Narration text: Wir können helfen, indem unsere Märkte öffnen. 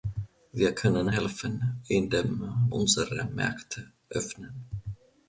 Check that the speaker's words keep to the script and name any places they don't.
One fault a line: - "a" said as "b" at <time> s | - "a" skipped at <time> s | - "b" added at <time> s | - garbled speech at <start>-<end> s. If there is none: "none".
none